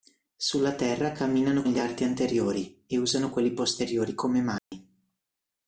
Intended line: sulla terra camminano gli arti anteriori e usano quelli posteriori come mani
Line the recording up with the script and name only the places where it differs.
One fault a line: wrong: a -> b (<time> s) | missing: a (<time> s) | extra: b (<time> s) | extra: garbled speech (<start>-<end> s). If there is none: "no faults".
no faults